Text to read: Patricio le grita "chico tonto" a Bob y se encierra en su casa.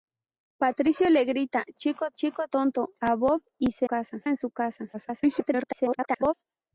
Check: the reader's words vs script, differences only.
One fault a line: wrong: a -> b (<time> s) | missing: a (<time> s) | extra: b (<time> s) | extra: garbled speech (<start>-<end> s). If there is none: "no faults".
extra: chico (2.1 s)
wrong: encierra -> casa (3.8 s)
extra: garbled speech (4.9-6.3 s)